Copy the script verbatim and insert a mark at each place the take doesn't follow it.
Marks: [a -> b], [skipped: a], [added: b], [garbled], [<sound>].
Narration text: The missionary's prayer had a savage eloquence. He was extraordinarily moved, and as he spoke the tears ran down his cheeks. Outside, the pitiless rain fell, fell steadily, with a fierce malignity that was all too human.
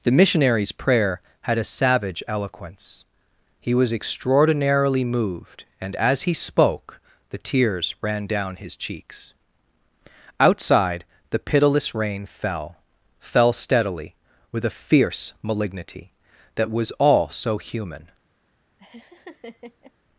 The missionary's prayer had a savage eloquence. He was extraordinarily moved, and as he spoke the tears ran down his cheeks. Outside, the pitiless rain fell, fell steadily, with a fierce malignity that was all [too -> so] human. [laugh]